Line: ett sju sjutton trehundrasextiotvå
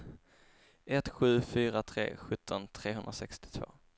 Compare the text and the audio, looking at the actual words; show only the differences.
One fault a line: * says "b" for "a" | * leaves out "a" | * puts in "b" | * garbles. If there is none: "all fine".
* puts in "fyra tre"